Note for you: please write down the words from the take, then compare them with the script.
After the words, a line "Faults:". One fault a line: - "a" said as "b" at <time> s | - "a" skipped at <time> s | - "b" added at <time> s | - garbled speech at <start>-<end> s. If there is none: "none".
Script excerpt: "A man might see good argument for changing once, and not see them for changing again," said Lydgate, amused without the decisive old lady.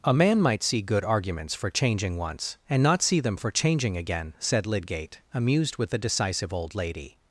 "A man might see good arguments for changing once, and not see them for changing again," said Lydgate, amused with the decisive old lady.
Faults:
- "argument" said as "arguments" at 1.1 s
- "without" said as "with" at 5.8 s